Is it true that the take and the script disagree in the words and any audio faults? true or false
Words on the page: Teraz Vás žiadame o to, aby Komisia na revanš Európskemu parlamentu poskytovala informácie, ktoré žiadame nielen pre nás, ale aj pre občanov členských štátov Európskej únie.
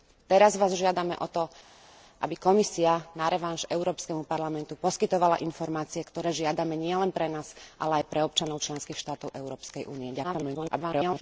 true